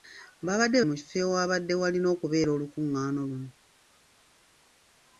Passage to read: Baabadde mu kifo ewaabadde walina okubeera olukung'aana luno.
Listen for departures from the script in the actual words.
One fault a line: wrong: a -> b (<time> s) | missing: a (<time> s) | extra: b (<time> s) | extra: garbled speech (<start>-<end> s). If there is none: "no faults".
no faults